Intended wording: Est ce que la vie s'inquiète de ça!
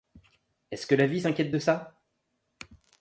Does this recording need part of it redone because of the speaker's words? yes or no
no